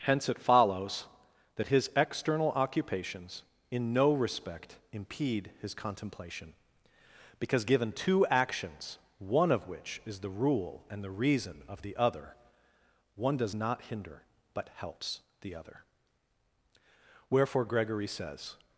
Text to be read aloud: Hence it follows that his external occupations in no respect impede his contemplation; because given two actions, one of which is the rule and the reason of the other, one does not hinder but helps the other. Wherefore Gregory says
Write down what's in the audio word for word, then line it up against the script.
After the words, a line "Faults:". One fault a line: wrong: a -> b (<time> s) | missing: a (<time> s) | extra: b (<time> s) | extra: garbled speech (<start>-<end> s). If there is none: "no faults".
Hence it follows that his external occupations in no respect impede his contemplation; because given two actions, one of which is the rule and the reason of the other, one does not hinder but helps the other. Wherefore Gregory says
Faults:
no faults